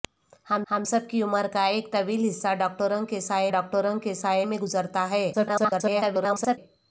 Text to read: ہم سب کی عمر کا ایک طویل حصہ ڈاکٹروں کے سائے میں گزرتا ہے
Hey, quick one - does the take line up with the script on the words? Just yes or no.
no